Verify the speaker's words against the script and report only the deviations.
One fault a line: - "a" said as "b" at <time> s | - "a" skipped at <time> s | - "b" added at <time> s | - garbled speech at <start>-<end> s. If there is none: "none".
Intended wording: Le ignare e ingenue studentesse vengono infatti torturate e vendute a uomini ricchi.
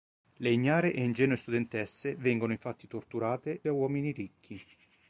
- "e vendute" skipped at 3.6 s